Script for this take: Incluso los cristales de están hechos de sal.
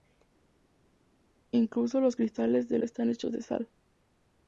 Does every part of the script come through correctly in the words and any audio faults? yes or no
yes